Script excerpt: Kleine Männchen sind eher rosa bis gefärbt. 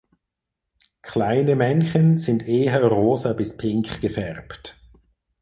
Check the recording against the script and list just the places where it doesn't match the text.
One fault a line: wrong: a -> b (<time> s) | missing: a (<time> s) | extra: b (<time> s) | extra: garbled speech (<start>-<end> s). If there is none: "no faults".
extra: pink (3.5 s)